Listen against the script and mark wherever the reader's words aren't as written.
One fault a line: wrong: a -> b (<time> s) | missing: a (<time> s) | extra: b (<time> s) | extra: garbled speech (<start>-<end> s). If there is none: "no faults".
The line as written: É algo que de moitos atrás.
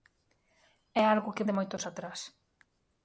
no faults